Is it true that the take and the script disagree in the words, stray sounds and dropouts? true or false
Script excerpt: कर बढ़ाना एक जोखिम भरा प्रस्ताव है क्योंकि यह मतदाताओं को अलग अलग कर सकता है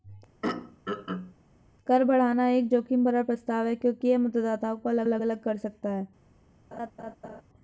true